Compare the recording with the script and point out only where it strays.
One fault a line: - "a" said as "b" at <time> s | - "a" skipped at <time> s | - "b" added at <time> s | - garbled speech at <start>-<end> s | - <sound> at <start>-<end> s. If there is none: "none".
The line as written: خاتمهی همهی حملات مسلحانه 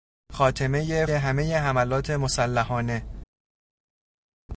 none